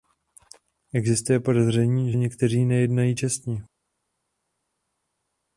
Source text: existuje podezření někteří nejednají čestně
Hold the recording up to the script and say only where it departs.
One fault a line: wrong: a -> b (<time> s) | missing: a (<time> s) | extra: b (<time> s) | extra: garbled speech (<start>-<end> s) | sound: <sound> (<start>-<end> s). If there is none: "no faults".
no faults